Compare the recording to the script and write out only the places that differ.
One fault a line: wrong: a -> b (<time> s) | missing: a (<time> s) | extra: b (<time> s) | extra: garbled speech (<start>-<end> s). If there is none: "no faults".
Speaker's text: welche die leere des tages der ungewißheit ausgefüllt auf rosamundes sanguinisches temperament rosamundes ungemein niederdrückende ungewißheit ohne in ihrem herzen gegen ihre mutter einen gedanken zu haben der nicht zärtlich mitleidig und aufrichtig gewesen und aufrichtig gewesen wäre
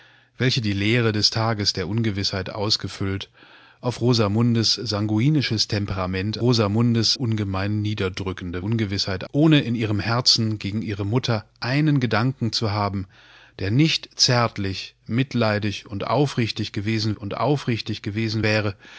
no faults